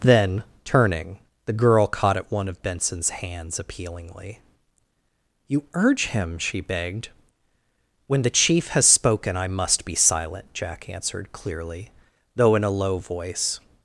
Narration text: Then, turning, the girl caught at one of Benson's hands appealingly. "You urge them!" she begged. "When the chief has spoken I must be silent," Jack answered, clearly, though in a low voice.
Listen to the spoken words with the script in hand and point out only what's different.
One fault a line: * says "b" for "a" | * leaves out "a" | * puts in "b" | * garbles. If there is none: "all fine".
* says "him" for "them"